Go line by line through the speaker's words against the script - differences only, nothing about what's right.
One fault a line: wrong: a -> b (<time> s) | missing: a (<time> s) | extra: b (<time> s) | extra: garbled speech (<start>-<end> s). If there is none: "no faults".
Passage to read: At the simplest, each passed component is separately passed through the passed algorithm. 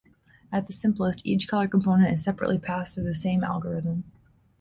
wrong: passed -> color (1.5 s)
wrong: passed -> same (3.1 s)